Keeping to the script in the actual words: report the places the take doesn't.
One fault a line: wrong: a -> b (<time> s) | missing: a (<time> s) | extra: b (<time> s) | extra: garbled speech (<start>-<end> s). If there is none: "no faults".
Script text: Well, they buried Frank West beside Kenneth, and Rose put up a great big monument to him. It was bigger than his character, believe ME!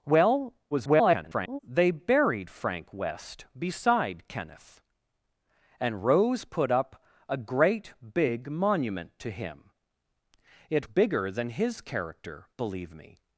extra: garbled speech (0.7-1.6 s)
missing: was (10.9 s)